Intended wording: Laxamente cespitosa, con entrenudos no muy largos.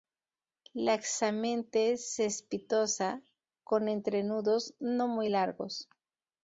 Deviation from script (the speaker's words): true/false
false